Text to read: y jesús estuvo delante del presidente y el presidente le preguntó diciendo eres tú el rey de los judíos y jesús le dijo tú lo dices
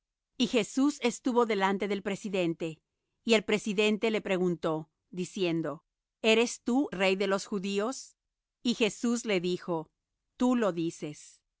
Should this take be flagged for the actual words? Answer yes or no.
yes